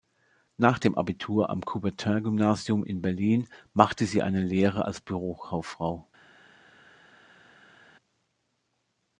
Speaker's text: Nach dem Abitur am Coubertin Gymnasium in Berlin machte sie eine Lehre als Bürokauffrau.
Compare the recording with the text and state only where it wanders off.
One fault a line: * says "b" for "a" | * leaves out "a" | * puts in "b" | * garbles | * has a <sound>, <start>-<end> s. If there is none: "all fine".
all fine